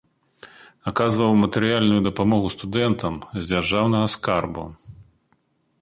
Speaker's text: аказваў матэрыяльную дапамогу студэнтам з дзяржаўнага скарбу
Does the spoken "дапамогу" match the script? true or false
true